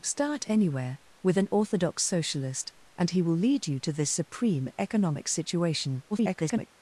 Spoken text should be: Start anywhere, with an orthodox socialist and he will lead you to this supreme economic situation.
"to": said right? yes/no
yes